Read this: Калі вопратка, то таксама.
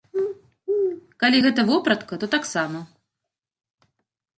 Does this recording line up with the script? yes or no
no